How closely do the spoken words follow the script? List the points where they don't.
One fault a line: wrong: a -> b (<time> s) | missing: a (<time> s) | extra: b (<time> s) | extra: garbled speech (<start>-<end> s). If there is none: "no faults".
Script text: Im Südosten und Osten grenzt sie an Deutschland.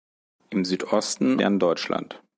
missing: und Osten grenzt (1.4 s)